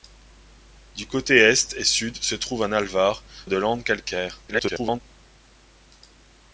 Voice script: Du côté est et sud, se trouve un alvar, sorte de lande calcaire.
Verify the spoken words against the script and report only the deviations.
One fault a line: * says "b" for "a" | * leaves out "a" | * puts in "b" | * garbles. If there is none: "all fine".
* leaves out "sorte"
* garbles